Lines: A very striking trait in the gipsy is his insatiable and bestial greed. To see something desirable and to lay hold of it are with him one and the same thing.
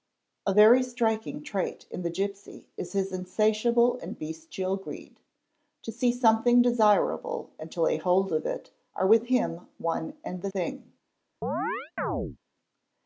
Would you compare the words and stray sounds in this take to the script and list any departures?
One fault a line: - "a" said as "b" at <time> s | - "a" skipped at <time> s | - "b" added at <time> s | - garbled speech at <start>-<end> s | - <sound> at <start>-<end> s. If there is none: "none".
- "same" skipped at 10.5 s
- chirp at 11.4-12.4 s